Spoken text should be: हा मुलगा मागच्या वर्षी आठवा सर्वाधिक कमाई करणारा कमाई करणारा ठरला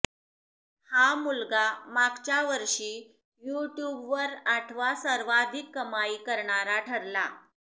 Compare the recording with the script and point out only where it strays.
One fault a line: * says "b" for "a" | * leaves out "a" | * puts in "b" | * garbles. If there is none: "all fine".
* puts in "यूट्यूबवर"
* leaves out "कमाई करणारा"